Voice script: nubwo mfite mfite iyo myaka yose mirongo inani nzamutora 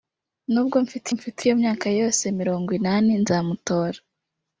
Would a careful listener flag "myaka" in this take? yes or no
no